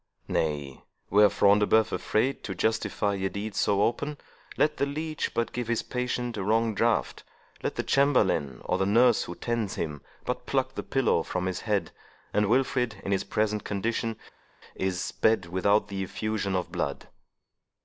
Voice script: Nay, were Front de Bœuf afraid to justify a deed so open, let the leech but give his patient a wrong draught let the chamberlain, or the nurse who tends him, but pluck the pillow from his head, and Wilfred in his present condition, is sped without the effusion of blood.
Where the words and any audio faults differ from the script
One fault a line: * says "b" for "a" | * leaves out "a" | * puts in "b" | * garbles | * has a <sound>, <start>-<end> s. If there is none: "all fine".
all fine